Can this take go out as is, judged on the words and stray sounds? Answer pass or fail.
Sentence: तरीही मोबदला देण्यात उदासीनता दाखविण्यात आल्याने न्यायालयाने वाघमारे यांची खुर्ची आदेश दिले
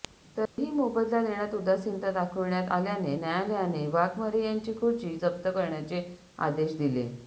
fail